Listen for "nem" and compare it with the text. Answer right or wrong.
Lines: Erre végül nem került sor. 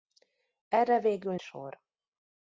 wrong